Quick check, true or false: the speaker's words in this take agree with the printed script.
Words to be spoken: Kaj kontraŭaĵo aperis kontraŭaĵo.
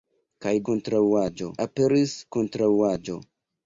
true